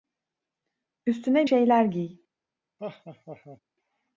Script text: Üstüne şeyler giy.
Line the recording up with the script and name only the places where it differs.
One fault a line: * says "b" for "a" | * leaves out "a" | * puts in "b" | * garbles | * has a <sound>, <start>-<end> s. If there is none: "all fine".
* has a laugh, 2.8-3.6 s